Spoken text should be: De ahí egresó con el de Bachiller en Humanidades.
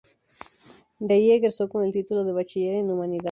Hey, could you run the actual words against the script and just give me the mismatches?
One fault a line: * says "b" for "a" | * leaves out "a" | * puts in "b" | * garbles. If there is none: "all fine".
* puts in "título"